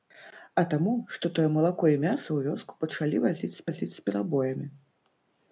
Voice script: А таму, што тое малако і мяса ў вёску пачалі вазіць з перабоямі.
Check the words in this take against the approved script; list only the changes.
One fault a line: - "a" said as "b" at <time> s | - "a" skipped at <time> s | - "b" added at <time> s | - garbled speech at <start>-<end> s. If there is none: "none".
- "вазіць з" added at 3.7 s